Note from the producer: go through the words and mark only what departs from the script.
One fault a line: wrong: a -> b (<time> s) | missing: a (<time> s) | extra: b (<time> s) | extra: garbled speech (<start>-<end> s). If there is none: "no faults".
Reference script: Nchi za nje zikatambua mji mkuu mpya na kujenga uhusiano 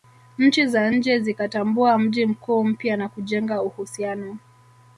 no faults